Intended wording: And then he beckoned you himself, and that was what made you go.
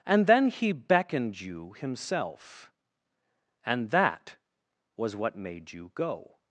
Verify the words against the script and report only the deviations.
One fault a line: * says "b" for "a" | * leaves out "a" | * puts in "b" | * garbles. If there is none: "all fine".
all fine